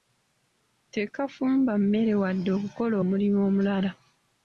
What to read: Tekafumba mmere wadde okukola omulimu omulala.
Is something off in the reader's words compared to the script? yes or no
no